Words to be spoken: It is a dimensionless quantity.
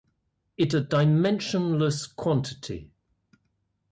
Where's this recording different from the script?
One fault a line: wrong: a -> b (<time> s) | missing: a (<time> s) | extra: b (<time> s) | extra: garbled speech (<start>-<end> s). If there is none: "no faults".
missing: is (0.7 s)